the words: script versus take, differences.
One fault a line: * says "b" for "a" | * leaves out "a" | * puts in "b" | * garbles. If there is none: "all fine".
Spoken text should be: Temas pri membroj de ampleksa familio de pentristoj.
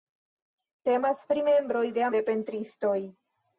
* leaves out "ampleksa familio"